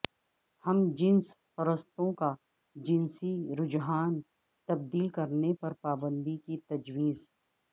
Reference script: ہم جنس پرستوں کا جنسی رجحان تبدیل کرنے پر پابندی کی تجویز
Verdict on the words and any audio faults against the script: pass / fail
pass